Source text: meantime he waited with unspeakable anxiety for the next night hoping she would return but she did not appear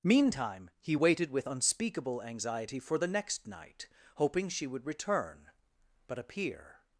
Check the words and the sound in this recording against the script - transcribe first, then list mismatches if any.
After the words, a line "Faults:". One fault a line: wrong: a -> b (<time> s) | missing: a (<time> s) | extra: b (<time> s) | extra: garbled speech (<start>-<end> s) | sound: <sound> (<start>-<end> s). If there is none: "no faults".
meantime he waited with unspeakable anxiety for the next night hoping she would return but appear
Faults:
missing: she did not (6.2 s)